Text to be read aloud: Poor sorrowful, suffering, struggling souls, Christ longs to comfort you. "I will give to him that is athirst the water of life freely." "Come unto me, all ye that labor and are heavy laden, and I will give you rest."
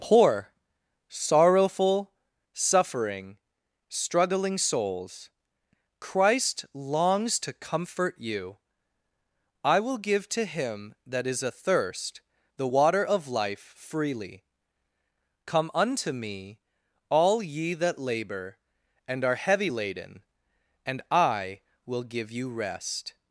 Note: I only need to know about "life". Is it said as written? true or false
true